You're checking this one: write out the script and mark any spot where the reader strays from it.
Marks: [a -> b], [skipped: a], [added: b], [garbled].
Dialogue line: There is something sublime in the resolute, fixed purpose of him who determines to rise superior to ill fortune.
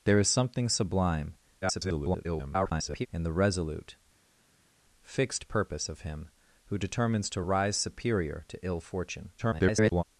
There is something sublime [garbled] in the resolute, fixed purpose of him who determines to rise superior to ill fortune. [garbled]